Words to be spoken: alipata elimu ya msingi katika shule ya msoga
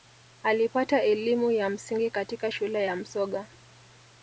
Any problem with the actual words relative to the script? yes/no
no